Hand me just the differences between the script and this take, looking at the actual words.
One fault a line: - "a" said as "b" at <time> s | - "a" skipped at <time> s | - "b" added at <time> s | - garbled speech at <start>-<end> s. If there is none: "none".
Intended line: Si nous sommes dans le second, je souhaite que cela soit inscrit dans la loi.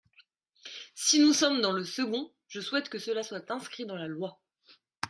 none